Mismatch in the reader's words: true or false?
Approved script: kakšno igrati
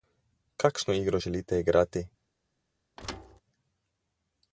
true